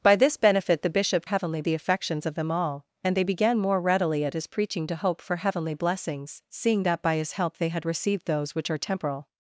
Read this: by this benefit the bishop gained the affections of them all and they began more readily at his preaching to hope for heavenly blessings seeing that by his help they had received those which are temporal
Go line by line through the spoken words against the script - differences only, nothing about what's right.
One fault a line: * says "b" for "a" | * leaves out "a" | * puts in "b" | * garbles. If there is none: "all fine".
* says "heavenly" for "gained"